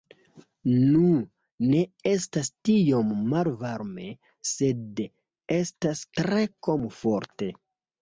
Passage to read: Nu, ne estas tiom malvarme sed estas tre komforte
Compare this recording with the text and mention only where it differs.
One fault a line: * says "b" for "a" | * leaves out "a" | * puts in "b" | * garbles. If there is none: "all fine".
all fine